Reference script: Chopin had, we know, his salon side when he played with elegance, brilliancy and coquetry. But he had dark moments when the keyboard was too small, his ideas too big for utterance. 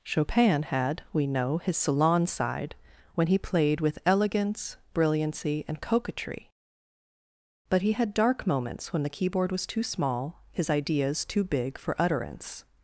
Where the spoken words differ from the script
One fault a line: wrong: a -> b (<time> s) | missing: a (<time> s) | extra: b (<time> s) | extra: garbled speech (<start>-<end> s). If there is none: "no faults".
no faults